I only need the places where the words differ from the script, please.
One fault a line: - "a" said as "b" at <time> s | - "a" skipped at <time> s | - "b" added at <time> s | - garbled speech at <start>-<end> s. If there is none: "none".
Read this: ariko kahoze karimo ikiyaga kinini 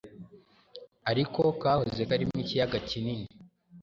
none